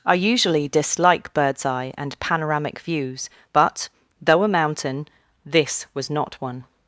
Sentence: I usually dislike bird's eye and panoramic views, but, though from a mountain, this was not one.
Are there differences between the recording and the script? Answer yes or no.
yes